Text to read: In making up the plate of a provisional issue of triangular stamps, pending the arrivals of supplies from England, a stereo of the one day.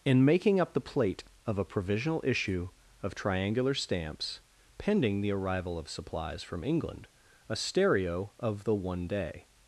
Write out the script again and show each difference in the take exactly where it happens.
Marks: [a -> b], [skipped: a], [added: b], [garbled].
In making up the plate of a provisional issue of triangular stamps, pending the [arrivals -> arrival] of supplies from England, a stereo of the one day.